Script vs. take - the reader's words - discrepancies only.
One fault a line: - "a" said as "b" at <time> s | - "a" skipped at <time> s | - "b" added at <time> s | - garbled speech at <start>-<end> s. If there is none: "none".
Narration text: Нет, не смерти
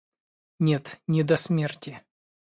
- "до" added at 1.2 s